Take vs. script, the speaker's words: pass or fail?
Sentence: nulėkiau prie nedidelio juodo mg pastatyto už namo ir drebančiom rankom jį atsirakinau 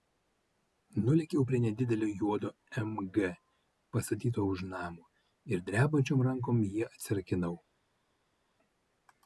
pass